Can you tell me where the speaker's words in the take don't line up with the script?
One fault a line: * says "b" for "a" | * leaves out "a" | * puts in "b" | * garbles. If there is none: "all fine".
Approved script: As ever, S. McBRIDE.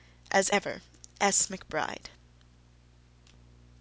all fine